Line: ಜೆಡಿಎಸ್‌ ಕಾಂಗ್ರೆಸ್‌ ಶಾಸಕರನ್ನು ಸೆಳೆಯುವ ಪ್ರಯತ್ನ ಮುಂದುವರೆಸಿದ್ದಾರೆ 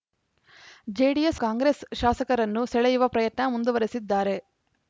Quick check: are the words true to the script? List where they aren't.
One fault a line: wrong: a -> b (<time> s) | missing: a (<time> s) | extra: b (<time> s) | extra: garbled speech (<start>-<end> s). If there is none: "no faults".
no faults